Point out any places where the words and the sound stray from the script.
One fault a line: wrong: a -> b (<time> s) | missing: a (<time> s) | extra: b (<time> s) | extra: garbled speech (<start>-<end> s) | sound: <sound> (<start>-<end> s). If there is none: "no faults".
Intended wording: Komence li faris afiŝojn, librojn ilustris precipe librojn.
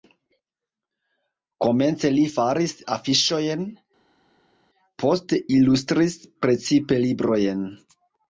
wrong: librojn -> poste (5.0 s)